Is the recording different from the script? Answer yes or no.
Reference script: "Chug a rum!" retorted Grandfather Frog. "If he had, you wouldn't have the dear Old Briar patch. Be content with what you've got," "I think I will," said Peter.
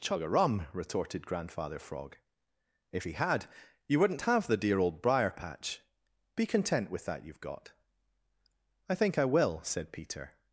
yes